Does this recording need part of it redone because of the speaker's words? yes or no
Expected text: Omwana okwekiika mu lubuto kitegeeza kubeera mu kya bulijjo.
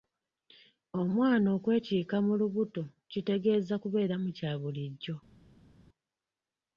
no